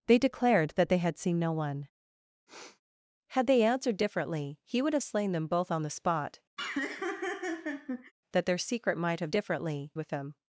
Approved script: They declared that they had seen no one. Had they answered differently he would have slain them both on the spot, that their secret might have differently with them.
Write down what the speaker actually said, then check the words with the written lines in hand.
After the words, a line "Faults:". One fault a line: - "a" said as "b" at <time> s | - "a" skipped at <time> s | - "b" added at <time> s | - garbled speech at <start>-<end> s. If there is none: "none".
They declared that they had seen no one. Had they answered differently he would have slain them both on the spot, that their secret might have differently with them.
Faults:
none